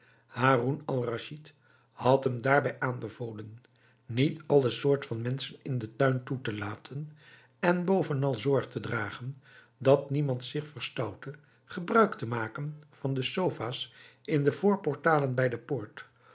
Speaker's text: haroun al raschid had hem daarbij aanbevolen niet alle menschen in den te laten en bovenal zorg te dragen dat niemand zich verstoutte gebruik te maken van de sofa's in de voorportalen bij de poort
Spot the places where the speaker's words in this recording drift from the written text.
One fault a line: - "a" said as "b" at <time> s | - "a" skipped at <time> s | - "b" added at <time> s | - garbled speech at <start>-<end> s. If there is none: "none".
- "soort van" added at 4.7 s
- "tuin toe" added at 6.0 s